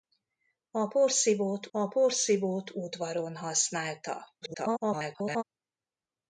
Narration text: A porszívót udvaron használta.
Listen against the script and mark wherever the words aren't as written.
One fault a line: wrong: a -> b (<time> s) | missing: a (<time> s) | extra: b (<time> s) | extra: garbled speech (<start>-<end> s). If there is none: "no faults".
extra: a porszívót (1.7 s)
extra: garbled speech (4.4-5.4 s)